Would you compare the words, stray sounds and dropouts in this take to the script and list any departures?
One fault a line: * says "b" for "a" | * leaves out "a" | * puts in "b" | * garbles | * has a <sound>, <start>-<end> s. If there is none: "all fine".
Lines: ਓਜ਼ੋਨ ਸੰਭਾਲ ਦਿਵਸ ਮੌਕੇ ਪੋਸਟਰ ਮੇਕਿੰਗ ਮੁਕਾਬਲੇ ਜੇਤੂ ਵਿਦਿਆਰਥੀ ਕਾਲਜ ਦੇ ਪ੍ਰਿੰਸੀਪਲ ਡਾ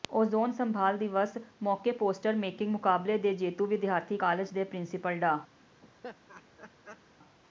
* puts in "ਦੇ"
* has a laugh, 5.8-7.0 s